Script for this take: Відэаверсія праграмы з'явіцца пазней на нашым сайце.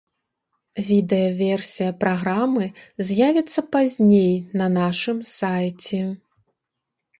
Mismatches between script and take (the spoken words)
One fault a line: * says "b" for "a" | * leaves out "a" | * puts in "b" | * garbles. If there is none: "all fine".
all fine